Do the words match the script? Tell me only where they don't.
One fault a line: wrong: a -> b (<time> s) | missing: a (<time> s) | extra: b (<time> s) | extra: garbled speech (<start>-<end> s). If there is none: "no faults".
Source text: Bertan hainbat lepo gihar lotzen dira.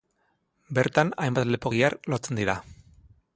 no faults